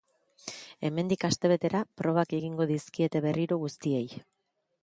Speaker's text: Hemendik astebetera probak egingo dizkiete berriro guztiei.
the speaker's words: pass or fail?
pass